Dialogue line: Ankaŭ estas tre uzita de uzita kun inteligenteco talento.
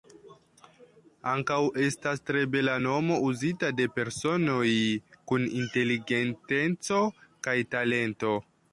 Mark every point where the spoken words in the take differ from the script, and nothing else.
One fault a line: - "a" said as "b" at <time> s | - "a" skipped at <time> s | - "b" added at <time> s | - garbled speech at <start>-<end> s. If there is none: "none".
- "bela nomo" added at 2.5 s
- "uzita" said as "personoj" at 4.0 s
- "kaj" added at 7.5 s